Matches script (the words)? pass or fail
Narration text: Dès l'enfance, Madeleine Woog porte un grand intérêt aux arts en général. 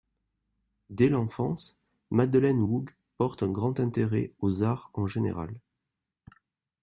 pass